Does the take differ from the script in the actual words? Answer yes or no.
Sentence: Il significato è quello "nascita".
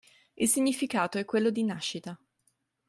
yes